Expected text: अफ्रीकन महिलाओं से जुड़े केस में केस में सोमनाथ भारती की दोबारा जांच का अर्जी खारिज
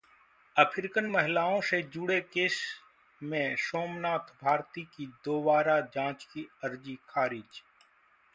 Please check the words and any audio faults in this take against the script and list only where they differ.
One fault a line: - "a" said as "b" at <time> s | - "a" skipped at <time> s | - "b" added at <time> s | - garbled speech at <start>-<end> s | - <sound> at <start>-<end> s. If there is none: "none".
- "केस में" skipped at 3.6 s
- "का" said as "की" at 6.2 s